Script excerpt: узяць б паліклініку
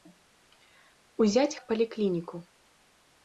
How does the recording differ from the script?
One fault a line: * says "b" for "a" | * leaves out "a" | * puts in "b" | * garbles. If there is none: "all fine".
all fine